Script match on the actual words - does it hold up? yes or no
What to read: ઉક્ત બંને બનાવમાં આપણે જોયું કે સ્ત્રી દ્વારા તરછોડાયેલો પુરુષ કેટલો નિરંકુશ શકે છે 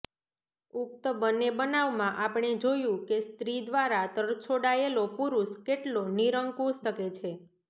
yes